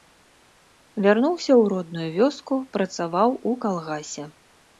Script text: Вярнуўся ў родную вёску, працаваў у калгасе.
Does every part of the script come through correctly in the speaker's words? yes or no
yes